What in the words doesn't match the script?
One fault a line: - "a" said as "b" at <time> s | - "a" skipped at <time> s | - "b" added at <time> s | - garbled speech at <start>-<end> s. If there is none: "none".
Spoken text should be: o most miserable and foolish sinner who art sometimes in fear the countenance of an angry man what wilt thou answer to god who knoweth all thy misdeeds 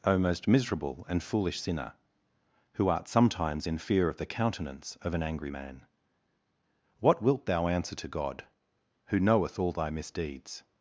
- "of" added at 4.1 s